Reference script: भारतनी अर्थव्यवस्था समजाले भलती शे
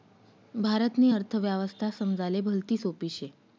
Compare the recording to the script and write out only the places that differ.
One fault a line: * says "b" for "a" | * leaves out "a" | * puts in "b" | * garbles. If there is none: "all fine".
* puts in "सोपी"